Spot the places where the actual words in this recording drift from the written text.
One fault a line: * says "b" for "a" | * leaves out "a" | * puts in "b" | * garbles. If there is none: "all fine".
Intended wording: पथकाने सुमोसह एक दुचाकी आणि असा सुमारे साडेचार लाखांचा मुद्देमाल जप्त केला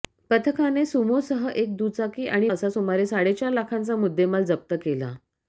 all fine